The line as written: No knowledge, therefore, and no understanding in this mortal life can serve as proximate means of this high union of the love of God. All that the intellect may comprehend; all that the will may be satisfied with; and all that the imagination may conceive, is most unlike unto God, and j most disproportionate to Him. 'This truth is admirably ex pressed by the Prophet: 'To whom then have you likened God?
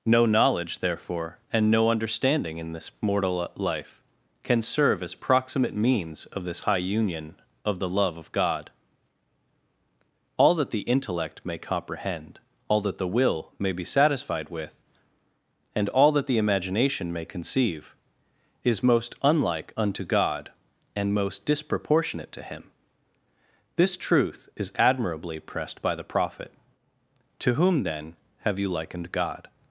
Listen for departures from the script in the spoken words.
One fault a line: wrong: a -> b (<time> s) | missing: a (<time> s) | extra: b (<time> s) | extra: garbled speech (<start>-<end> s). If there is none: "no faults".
missing: j (21.1 s)
missing: ex (25.4 s)